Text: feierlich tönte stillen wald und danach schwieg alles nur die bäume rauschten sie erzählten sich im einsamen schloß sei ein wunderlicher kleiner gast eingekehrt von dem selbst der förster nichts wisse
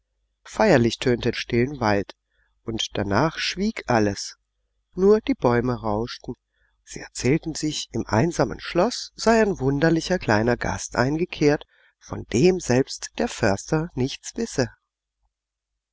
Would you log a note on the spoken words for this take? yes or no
no